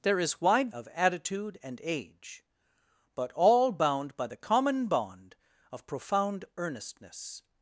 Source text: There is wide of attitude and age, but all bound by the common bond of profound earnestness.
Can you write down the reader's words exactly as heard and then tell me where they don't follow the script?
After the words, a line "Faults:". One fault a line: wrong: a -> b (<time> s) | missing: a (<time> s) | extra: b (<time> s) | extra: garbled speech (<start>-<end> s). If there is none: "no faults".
There is wide of attitude and age, but all bound by the common bond of profound earnestness.
Faults:
no faults